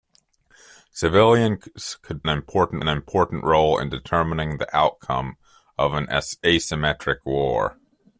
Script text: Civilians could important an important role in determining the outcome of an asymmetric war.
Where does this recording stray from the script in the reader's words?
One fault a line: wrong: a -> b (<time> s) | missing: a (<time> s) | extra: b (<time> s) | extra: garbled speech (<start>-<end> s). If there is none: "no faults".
no faults